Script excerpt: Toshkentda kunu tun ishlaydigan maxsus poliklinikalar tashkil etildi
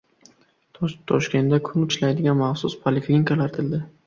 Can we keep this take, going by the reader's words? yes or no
no